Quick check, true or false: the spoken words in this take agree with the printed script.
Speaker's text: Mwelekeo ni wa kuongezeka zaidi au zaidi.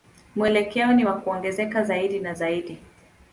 false